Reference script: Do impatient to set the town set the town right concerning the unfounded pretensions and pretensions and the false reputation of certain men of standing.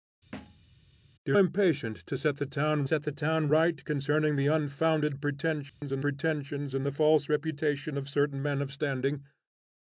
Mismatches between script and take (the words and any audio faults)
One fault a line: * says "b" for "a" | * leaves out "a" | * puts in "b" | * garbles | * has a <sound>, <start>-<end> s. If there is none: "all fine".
* has a thud, 0.3-0.7 s
* has a dropout, 5.7-5.8 s